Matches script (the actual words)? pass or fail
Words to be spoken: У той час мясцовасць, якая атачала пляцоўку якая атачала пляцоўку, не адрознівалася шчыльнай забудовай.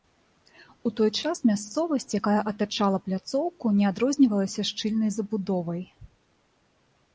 fail